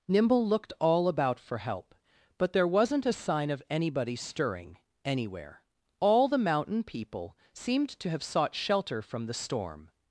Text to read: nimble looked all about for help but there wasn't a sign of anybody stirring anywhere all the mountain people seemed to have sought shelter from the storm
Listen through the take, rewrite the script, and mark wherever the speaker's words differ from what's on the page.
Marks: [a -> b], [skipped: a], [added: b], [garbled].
nimble looked all about for help but there wasn't a sign of anybody stirring anywhere all the mountain people seemed to have sought shelter from the storm